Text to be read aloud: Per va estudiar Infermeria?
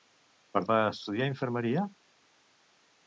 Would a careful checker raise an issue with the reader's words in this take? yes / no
no